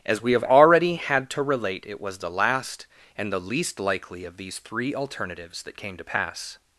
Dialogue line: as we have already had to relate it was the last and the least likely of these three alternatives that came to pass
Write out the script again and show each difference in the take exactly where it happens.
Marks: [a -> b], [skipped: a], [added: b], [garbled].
as we have already had to relate it was the last and the least likely of these three alternatives that came to pass